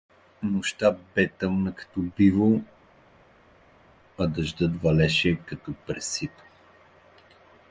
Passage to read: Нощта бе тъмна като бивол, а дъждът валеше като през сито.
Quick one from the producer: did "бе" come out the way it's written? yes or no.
yes